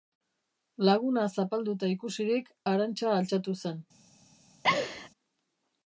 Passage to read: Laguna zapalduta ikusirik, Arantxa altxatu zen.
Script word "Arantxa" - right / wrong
right